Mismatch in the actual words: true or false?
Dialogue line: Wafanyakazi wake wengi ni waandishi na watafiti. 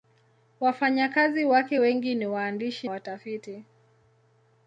true